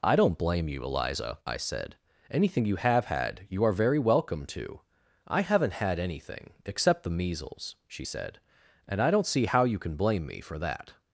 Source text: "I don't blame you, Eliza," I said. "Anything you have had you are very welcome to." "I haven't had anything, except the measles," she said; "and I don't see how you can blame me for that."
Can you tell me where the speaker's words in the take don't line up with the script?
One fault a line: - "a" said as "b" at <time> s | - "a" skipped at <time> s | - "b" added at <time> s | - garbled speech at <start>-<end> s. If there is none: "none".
none